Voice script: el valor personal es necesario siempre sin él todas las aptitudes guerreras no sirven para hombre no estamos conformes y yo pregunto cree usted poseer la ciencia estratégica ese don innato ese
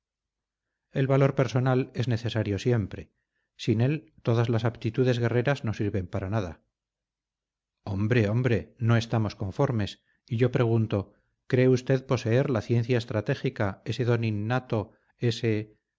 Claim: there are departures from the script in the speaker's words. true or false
true